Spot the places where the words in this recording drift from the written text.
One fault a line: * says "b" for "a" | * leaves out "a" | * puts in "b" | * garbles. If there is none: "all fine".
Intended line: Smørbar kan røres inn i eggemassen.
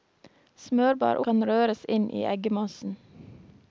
all fine